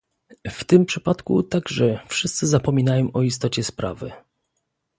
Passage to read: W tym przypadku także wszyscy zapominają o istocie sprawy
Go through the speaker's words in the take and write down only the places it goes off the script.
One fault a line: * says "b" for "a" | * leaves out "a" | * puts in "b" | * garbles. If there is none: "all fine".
all fine